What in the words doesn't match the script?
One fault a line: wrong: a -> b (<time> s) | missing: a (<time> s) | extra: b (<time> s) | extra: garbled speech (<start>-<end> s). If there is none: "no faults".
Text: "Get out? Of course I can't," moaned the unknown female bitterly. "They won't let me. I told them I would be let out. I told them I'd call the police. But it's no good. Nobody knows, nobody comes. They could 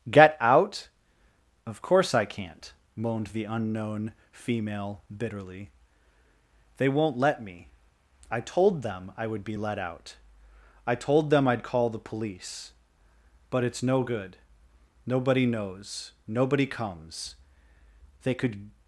no faults